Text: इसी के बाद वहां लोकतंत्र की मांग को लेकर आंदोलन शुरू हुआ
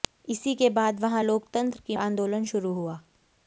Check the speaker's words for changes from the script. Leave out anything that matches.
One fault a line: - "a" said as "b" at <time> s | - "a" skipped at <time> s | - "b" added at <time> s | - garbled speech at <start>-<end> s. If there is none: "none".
- "मांग को लेकर" skipped at 2.0 s